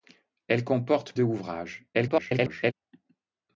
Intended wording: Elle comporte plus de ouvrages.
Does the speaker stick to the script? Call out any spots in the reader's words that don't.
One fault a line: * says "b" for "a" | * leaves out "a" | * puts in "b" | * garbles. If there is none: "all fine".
* leaves out "plus"
* garbles